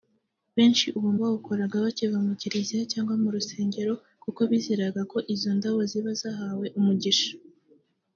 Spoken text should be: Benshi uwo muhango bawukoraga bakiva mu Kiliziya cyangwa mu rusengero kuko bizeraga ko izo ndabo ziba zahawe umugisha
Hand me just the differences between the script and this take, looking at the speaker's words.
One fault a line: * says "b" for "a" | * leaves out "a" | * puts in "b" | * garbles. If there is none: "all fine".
* leaves out "muhango"